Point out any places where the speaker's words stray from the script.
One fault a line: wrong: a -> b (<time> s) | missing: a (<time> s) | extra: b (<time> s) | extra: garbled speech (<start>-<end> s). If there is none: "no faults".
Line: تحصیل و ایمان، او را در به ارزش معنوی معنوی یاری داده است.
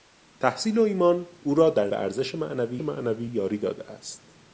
no faults